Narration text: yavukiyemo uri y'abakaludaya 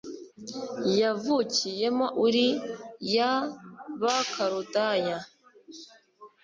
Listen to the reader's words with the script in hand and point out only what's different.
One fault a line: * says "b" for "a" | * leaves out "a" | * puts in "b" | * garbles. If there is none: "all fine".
all fine